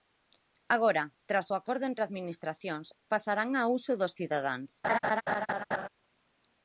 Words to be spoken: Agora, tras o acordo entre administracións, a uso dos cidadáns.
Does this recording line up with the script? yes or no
no